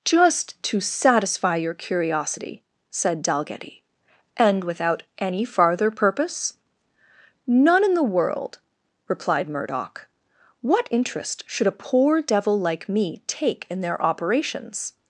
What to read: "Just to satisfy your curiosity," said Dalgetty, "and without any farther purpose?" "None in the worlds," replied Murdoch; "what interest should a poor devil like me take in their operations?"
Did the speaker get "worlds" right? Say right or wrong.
wrong